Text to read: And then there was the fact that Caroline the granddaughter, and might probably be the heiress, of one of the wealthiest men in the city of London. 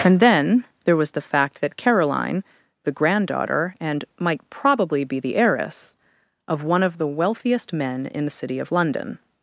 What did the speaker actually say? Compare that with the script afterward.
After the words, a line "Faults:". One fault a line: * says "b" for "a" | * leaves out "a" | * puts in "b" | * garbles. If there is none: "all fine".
And then there was the fact that Caroline the granddaughter, and might probably be the heiress, of one of the wealthiest men in the city of London.
Faults:
all fine